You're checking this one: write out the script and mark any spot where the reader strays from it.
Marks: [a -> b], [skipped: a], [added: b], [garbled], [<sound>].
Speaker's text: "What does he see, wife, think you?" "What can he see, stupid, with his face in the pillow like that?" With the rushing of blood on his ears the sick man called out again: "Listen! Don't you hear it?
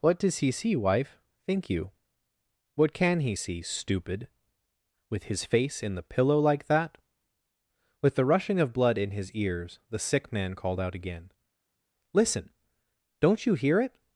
"What does he see, wife, think you?" "What can he see, stupid, with his face in the pillow like that?" With the rushing of blood [on -> in] his ears the sick man called out again: "Listen! Don't you hear it?